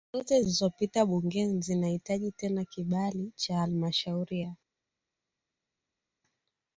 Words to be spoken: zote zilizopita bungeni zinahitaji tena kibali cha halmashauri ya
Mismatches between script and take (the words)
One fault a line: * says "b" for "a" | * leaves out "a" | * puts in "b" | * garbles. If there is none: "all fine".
all fine